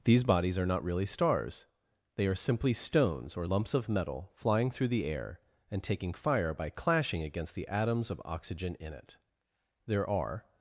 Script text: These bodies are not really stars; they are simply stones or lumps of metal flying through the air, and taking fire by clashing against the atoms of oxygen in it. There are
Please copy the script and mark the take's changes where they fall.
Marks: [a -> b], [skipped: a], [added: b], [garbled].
These bodies are not really stars; they are simply stones or lumps of metal flying through the air, and taking fire by clashing against the atoms of oxygen in it. There are